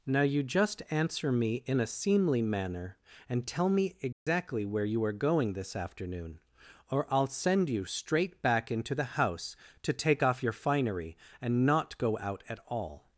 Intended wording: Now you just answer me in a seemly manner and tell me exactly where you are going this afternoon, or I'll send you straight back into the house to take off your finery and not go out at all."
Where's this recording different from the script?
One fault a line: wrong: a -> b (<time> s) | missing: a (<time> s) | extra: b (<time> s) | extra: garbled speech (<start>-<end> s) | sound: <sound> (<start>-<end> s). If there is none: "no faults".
sound: dropout (4.1-4.3 s)